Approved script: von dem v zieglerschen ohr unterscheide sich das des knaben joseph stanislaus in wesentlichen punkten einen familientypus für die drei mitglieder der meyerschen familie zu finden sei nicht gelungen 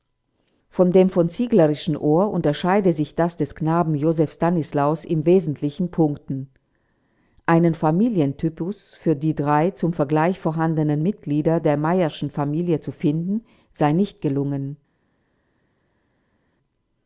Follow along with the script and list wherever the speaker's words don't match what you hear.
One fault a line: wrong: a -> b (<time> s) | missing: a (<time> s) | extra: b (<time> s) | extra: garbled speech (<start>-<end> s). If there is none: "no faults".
extra: zum vergleich vorhandenen (9.7 s)